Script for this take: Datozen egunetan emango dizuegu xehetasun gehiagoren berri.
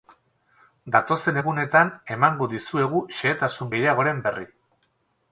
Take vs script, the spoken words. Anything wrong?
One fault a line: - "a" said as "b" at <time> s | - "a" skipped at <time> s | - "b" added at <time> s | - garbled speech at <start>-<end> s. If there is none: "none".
none